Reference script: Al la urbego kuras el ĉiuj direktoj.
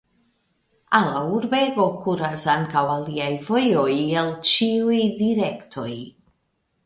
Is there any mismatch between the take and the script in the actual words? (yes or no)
yes